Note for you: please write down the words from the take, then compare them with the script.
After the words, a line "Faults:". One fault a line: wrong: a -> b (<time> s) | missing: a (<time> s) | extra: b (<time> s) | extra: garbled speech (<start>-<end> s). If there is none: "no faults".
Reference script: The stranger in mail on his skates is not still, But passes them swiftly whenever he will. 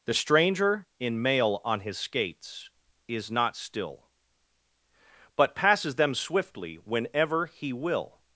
The stranger in mail on his skates is not still, But passes them swiftly whenever he will.
Faults:
no faults